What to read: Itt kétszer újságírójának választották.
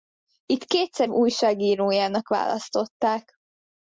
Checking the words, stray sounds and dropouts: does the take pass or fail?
pass